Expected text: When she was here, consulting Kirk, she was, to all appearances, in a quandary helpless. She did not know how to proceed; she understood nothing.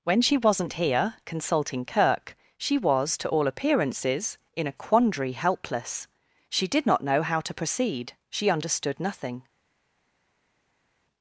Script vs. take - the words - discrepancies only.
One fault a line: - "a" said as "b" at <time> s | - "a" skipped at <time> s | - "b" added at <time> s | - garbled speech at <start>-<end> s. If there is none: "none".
- "was" said as "wasn't" at 0.4 s